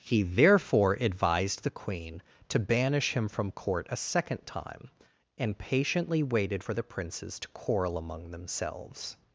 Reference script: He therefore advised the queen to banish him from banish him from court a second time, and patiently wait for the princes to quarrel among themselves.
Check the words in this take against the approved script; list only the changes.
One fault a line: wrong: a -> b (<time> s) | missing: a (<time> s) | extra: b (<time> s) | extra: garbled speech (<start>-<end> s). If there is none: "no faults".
missing: banish him from (3.5 s)
wrong: wait -> waited (6.2 s)